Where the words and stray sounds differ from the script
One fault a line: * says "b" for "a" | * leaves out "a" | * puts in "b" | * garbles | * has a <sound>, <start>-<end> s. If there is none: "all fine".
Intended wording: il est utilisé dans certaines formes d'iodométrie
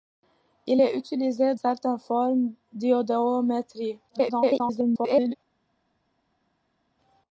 * leaves out "dans"
* garbles